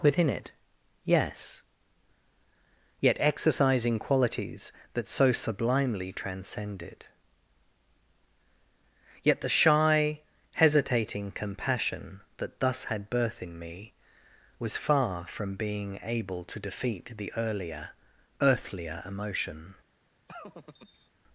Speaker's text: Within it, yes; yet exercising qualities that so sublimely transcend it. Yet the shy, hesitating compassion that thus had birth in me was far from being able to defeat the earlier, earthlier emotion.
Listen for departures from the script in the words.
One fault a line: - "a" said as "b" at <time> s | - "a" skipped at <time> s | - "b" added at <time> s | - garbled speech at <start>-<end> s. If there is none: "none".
none